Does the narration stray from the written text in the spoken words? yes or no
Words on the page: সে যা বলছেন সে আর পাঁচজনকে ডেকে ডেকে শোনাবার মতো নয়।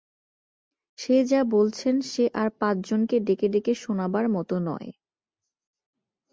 no